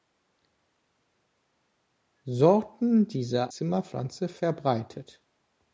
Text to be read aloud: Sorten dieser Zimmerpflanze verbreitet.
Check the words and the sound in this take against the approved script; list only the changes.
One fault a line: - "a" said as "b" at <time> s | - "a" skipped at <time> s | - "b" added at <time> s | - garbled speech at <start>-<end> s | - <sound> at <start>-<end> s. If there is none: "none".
none